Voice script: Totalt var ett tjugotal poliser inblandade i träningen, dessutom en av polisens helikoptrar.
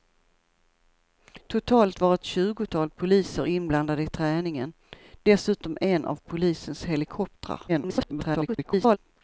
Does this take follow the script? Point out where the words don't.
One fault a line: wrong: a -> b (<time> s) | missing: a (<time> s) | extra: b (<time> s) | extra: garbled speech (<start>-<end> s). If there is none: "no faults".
extra: garbled speech (7.7-9.0 s)